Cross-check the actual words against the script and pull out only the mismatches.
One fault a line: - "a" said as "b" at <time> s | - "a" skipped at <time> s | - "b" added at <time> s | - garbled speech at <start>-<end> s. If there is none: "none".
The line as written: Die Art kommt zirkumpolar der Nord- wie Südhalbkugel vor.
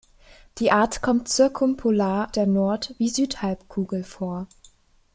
none